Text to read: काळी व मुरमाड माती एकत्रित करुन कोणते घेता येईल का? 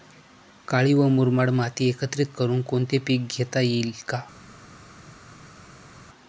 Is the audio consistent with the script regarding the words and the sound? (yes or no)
no